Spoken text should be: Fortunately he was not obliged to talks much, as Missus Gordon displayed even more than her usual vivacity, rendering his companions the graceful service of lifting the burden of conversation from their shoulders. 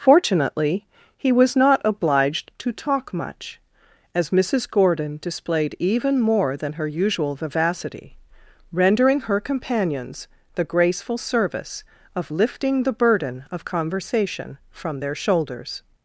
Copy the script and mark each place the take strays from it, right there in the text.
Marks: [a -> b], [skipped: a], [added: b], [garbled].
Fortunately he was not obliged to [talks -> talk] much, as Missus Gordon displayed even more than her usual vivacity, rendering [his -> her] companions the graceful service of lifting the burden of conversation from their shoulders.